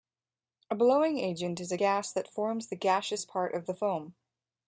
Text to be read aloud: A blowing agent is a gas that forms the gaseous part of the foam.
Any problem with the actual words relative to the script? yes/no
no